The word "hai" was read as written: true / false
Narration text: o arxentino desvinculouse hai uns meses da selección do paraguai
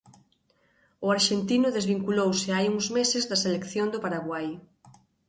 true